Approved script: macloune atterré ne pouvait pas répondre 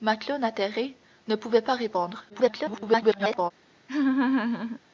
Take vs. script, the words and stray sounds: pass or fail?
fail